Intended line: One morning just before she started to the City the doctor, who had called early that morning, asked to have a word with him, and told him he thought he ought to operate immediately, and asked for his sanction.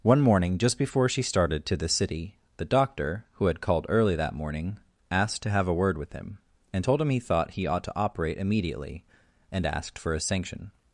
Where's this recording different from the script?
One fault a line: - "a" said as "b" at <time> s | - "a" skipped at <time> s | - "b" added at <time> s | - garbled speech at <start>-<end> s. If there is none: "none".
none